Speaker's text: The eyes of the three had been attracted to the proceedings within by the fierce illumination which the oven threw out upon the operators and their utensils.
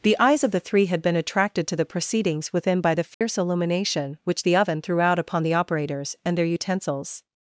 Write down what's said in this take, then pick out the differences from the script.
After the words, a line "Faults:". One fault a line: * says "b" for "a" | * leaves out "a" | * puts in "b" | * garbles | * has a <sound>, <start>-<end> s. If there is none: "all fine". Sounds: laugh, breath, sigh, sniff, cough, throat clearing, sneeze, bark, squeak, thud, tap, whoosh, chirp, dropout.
The eyes of the three had been attracted to the proceedings within by the fierce illumination which the oven threw out upon the operators and their utensils.
Faults:
* has a dropout, 3.1-3.2 s